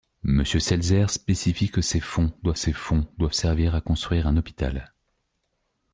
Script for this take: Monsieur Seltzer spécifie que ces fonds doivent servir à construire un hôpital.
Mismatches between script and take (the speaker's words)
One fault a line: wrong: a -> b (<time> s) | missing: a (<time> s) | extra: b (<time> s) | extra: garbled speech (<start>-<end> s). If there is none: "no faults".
extra: ces fonds doivent (2.5 s)